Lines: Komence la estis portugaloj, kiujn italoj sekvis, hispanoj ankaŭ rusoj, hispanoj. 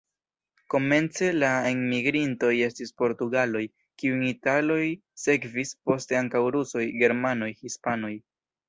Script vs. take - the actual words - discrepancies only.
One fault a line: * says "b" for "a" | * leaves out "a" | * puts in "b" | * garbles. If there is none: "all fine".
* puts in "enmigrintoj"
* says "poste" for "hispanoj"
* puts in "germanoj"